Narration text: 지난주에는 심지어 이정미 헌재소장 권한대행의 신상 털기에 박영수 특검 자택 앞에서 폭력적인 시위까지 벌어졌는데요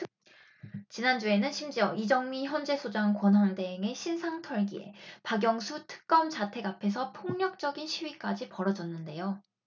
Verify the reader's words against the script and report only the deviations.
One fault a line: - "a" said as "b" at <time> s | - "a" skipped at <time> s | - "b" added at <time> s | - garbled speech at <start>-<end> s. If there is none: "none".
none